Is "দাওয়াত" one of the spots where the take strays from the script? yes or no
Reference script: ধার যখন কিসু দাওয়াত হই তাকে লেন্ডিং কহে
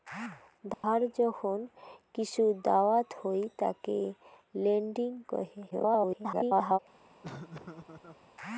no